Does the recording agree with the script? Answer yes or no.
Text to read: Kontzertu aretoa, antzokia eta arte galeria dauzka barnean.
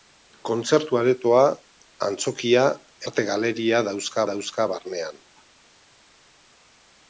no